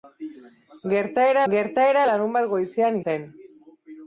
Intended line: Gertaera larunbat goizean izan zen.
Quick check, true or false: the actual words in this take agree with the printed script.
false